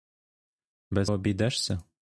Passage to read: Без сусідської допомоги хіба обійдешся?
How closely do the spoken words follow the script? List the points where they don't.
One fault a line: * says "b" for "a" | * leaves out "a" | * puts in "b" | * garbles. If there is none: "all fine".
* leaves out "сусідської допомоги хіба"